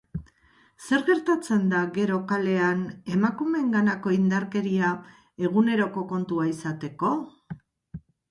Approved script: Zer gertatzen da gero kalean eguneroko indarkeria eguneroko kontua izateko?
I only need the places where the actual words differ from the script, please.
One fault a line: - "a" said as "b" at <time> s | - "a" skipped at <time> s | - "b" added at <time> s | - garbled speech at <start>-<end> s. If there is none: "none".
- "eguneroko" said as "emakumeenganako" at 3.2 s